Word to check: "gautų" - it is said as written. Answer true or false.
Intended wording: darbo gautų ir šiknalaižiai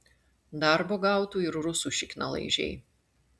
true